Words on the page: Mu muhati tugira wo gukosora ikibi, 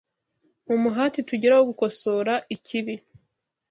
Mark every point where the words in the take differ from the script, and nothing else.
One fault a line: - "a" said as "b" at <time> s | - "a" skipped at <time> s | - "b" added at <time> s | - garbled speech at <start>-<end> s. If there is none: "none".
none